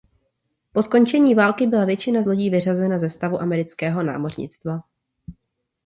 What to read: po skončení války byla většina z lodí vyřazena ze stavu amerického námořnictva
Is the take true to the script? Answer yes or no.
yes